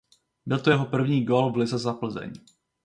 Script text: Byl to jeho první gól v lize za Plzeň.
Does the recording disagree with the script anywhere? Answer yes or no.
no